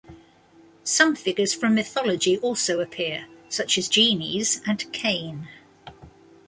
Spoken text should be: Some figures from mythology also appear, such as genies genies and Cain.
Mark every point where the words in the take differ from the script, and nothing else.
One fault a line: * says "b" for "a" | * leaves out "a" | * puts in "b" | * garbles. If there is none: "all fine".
* leaves out "genies"